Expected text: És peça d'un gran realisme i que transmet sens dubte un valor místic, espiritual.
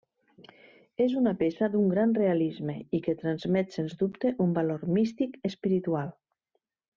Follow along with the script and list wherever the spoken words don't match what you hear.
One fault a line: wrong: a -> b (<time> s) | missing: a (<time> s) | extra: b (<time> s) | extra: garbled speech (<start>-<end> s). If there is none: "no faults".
extra: una (1.2 s)